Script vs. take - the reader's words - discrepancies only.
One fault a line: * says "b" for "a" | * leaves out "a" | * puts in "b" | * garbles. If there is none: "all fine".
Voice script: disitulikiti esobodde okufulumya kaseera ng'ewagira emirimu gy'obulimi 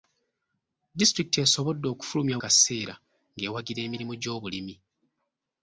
all fine